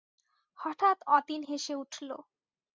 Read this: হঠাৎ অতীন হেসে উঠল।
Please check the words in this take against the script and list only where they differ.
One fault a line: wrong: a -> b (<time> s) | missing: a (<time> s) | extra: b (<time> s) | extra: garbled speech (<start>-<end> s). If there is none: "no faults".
no faults